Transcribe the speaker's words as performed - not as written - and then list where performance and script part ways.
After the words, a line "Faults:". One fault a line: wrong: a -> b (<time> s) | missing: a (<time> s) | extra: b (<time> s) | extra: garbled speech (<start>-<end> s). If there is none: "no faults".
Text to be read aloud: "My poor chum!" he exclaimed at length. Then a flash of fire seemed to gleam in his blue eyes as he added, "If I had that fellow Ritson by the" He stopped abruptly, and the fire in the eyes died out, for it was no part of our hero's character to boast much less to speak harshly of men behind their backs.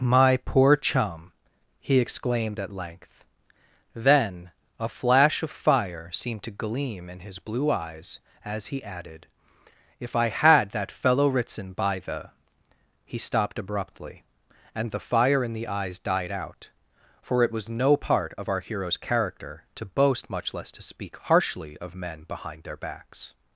"My poor chum!" he exclaimed at length. Then a flash of fire seemed to gleam in his blue eyes as he added, "If I had that fellow Ritson by the" He stopped abruptly, and the fire in the eyes died out, for it was no part of our hero's character to boast much less to speak harshly of men behind their backs.
Faults:
no faults